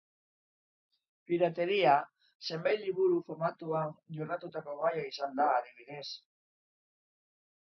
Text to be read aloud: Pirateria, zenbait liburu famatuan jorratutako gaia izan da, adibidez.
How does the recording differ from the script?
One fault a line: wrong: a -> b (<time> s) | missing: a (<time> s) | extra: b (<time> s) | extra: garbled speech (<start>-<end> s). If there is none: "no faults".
no faults